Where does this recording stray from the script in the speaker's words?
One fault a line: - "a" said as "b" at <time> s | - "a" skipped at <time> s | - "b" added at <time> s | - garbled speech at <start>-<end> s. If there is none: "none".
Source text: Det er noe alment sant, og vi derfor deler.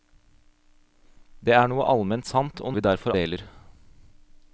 none